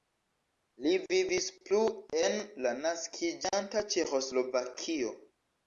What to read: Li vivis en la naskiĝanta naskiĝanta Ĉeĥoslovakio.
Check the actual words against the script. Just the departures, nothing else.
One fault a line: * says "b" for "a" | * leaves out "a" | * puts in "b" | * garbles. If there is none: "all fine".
* puts in "plu"
* leaves out "naskiĝanta"